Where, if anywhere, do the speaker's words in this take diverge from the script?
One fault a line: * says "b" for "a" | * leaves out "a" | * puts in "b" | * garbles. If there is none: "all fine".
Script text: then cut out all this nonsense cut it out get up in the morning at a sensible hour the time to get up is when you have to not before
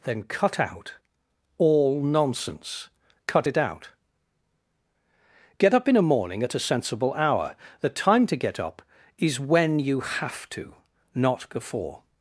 * leaves out "this"
* says "a" for "the"